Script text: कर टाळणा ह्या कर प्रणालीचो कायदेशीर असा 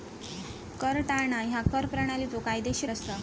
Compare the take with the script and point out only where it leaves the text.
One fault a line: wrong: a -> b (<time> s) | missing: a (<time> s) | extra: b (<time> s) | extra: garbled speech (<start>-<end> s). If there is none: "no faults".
no faults